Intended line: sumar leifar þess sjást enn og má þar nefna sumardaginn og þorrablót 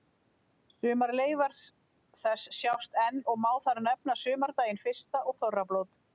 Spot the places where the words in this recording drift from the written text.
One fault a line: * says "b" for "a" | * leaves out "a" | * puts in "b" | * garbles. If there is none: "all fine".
* puts in "fyrsta"